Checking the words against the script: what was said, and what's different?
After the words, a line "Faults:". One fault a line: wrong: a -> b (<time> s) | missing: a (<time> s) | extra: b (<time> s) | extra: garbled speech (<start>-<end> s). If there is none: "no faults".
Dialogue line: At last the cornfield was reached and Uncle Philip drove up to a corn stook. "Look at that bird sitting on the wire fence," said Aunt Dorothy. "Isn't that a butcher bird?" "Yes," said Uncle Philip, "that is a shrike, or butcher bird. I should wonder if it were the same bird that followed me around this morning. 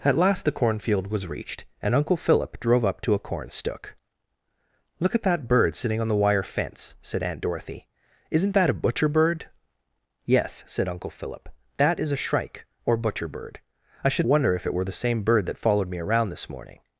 At last the cornfield was reached and Uncle Philip drove up to a corn stook. "Look at that bird sitting on the wire fence," said Aunt Dorothy. "Isn't that a butcher bird?" "Yes," said Uncle Philip, "that is a shrike, or butcher bird. I should wonder if it were the same bird that followed me around this morning.
Faults:
no faults